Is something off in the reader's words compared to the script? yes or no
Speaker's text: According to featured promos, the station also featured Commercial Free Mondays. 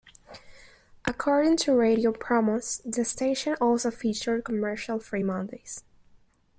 yes